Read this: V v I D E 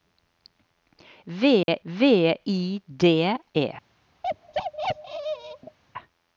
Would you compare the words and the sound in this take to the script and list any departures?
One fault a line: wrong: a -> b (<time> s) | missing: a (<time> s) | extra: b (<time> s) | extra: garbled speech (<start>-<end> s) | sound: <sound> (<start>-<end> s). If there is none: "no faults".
sound: dropout (1.6-1.7 s)
sound: bark (4.2-5.8 s)